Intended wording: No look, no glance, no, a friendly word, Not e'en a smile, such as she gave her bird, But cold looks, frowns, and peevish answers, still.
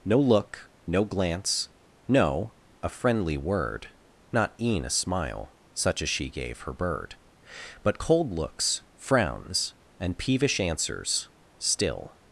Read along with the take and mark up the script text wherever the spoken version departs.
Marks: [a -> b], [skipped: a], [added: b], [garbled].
No look, no glance, no, a friendly word, Not e'en a smile, such as she gave her bird, But cold looks, frowns, and peevish answers, still.